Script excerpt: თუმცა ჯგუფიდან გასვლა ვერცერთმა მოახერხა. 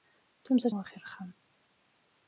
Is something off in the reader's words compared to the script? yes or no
yes